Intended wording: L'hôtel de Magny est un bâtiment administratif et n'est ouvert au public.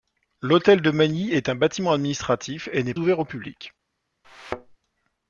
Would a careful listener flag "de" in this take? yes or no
no